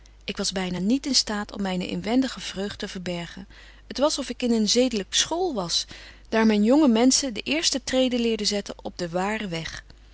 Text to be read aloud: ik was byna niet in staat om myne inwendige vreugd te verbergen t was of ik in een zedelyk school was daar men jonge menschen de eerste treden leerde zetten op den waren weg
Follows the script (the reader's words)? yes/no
yes